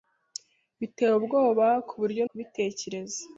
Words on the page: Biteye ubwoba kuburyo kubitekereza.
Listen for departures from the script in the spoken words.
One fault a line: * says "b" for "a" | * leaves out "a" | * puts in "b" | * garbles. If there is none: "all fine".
all fine